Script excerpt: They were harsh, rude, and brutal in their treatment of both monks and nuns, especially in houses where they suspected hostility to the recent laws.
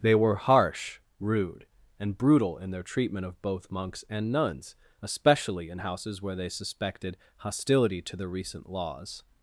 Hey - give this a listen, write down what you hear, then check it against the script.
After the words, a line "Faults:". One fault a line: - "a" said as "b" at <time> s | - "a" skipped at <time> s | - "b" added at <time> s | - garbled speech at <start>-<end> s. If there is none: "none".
They were harsh, rude, and brutal in their treatment of both monks and nuns, especially in houses where they suspected hostility to the recent laws.
Faults:
none